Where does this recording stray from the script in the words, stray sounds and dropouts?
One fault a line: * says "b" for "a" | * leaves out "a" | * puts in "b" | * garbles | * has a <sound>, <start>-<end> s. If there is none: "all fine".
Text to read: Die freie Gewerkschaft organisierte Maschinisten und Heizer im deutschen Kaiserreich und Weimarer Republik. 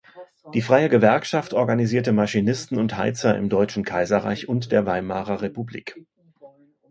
* puts in "der"